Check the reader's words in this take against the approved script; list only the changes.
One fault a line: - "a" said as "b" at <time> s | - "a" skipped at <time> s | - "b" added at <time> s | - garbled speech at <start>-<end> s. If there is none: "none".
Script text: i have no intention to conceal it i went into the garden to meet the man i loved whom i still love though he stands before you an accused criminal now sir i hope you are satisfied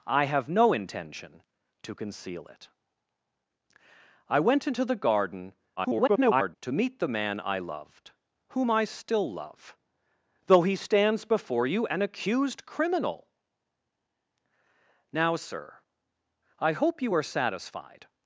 - garbled speech at 5.8-6.5 s